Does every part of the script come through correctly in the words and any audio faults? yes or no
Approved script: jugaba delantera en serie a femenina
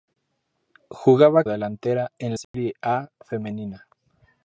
no